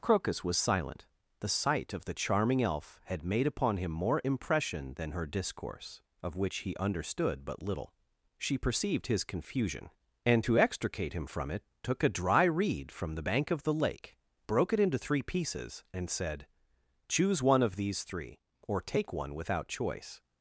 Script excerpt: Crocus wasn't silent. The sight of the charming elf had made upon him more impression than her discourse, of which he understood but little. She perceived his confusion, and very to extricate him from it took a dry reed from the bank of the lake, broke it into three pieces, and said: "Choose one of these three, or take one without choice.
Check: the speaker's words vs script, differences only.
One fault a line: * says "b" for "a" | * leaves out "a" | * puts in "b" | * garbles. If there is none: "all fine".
* says "was" for "wasn't"
* leaves out "very"